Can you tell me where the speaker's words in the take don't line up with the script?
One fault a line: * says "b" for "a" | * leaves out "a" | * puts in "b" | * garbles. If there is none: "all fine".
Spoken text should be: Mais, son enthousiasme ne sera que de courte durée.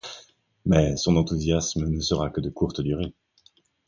all fine